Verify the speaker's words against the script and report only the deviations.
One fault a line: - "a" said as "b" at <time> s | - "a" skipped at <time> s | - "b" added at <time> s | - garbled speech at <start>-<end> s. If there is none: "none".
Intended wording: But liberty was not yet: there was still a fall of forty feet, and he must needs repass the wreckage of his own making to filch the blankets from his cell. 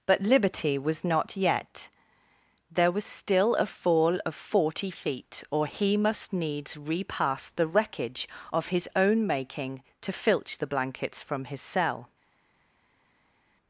- "and" said as "or" at 5.5 s